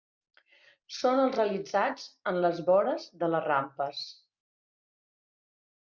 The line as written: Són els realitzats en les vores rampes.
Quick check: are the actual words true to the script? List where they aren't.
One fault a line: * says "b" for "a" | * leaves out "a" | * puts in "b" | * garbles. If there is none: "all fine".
* puts in "de les"